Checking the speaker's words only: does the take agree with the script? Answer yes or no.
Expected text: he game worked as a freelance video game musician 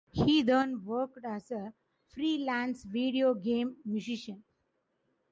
no